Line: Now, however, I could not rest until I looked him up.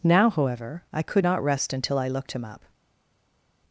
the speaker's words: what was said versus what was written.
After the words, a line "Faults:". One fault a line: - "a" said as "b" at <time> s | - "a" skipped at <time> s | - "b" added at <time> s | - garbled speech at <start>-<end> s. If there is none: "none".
Now, however, I could not rest until I looked him up.
Faults:
none